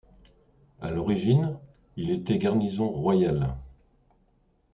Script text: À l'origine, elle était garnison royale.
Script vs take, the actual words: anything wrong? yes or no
yes